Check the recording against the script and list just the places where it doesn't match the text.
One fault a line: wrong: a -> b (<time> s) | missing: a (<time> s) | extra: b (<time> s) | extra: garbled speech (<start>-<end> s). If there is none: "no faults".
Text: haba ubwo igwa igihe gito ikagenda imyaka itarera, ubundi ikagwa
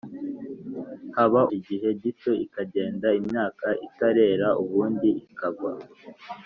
missing: ubwo igwa (1.4 s)